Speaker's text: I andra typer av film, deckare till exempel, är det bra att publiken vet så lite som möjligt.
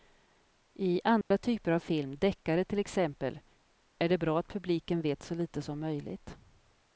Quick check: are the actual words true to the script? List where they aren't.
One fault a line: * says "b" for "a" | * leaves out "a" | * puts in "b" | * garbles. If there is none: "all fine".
all fine